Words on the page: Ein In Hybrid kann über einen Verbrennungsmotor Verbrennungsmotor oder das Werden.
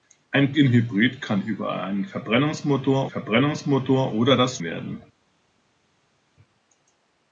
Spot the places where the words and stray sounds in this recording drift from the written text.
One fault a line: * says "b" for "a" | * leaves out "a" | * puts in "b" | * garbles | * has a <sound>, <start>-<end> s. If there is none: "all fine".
all fine